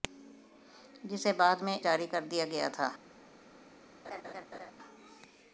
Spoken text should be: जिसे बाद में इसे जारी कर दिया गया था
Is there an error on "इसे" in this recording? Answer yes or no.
yes